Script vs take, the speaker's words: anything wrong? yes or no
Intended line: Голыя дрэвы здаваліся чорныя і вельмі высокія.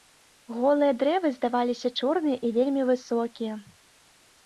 no